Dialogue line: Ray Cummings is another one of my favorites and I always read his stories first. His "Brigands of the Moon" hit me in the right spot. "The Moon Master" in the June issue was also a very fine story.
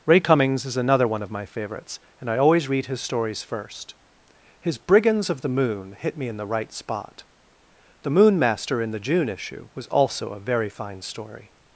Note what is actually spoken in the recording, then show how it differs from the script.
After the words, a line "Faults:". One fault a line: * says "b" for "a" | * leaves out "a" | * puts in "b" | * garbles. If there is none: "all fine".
Ray Cummings is another one of my favorites and I always read his stories first. His "Brigands of the Moon" hit me in the right spot. "The Moon Master" in the June issue was also a very fine story.
Faults:
all fine